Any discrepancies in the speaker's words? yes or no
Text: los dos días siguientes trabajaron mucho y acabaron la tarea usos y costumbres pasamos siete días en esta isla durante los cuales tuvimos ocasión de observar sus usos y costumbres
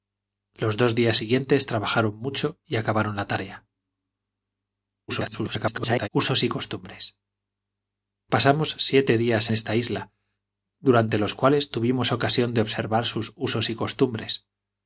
yes